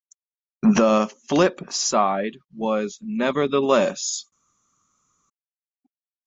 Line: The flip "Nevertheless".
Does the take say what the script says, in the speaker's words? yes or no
no